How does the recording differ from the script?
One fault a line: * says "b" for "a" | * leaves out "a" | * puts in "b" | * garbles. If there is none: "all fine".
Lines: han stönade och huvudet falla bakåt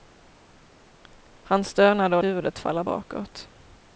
all fine